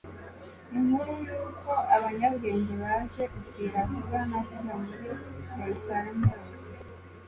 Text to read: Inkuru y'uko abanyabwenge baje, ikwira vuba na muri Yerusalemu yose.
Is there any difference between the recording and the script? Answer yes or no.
yes